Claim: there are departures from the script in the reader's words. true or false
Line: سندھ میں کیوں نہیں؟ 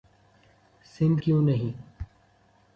true